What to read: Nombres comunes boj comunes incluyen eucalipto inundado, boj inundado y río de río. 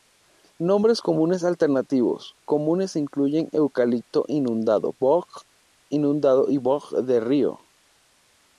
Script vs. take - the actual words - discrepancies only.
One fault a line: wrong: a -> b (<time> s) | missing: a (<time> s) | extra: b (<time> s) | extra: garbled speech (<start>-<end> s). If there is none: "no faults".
wrong: boj -> alternativos (1.4 s)
wrong: río -> boj (6.6 s)